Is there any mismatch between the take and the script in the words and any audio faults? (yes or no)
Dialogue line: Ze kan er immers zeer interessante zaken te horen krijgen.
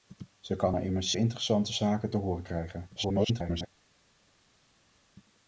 yes